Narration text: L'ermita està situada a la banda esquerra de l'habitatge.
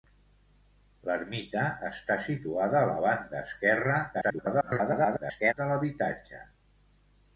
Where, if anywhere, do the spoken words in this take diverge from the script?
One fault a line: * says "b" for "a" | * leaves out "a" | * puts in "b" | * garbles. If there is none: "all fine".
* garbles